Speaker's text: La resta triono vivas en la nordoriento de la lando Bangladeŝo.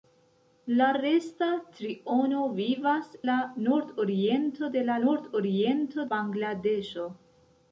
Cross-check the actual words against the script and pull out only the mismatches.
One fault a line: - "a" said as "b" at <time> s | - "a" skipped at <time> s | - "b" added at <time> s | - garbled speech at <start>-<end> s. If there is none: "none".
- "en" skipped at 3.1 s
- "lando" said as "nordoriento" at 5.1 s